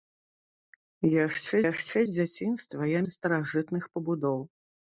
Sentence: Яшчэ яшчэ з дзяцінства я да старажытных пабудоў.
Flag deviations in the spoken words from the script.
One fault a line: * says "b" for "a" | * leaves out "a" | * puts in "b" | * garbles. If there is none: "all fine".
all fine